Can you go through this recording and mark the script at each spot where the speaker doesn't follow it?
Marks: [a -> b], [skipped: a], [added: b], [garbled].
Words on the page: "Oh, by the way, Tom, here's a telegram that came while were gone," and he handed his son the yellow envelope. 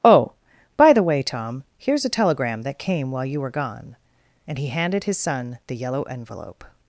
"Oh, by the way, Tom, here's a telegram that came while [added: you] were gone," and he handed his son the yellow envelope.